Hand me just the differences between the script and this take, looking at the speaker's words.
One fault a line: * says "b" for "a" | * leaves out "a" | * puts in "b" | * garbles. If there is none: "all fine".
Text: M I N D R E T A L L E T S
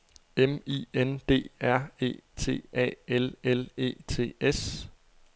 all fine